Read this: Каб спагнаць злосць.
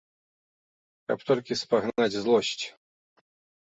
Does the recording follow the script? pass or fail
fail